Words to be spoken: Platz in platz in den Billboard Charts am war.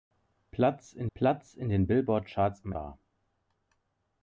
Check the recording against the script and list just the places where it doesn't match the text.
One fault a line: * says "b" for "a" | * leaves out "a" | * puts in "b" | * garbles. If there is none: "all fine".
all fine